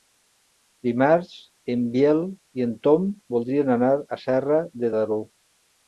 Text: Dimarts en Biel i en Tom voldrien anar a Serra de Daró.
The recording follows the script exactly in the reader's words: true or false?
true